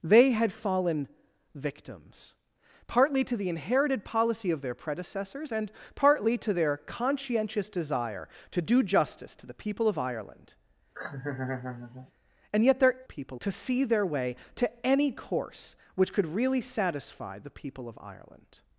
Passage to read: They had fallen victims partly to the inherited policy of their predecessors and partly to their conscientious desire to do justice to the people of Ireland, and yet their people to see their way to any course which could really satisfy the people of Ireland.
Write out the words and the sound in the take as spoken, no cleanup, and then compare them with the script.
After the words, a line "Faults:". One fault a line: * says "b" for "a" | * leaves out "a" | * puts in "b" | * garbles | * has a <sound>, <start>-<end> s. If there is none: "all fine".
They had fallen victims partly to the inherited policy of their predecessors and partly to their conscientious desire to do justice to the people of Ireland, and yet their people to see their way to any course which could really satisfy the people of Ireland.
Faults:
* has a laugh, 10.9-12.1 s